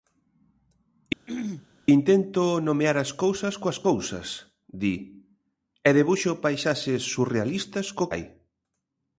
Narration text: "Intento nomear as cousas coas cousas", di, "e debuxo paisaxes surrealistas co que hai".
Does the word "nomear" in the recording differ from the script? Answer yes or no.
no